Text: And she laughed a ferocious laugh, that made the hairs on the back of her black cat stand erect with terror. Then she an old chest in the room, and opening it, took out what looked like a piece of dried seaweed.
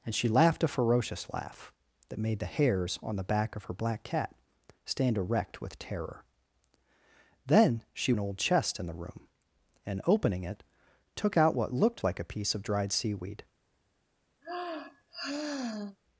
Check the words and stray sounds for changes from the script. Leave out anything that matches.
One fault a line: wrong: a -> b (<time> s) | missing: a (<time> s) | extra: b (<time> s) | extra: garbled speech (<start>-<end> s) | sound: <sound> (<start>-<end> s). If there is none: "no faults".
sound: sigh (14.4-16.0 s)